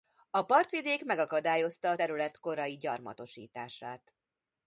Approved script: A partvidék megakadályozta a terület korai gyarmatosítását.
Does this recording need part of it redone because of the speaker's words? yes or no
no